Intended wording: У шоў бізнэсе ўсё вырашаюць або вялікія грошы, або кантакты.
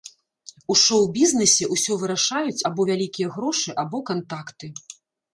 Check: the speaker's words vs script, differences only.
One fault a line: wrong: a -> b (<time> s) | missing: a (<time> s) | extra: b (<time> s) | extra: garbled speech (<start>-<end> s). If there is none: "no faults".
no faults